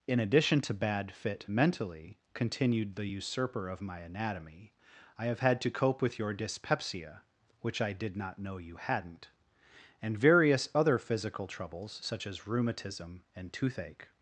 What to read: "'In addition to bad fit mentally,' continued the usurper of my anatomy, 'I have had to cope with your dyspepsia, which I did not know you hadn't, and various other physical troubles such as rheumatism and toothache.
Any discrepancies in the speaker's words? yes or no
no